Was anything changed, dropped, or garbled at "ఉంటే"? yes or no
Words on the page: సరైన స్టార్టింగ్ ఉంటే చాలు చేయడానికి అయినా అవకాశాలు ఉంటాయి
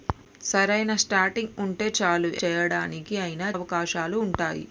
no